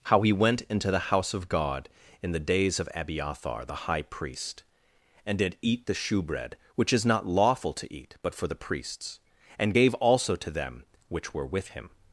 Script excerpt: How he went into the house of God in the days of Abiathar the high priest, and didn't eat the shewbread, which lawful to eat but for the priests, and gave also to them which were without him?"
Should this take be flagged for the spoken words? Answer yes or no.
yes